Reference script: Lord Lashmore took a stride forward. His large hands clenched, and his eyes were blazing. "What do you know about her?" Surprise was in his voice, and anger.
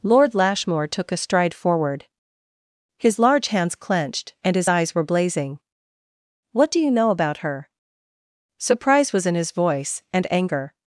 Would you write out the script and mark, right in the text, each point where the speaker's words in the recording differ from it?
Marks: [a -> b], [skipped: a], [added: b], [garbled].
Lord Lashmore took a stride forward. His large hands clenched, and his eyes were blazing. "What do you know about her?" Surprise was in his voice, and anger.